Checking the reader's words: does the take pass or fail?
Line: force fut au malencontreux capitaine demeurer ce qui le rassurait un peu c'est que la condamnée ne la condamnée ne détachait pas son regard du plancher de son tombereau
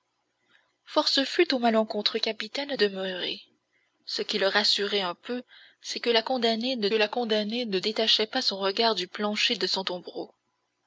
pass